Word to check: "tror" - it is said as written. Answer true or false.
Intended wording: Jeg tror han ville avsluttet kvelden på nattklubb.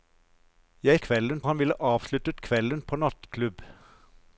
false